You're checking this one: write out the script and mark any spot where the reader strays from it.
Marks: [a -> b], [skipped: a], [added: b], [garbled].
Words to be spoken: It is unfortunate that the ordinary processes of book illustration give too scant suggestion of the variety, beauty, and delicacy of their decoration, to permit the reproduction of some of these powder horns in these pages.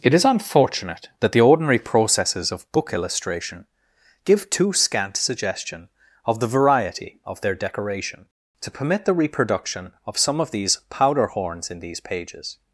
It is unfortunate that the ordinary processes of book illustration give too scant suggestion of the variety, [skipped: beauty, and delicacy] of their decoration, to permit the reproduction of some of these powder horns in these pages.